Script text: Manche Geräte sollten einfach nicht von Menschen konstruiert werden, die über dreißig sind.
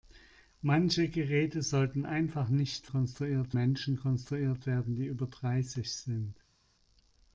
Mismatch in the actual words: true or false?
true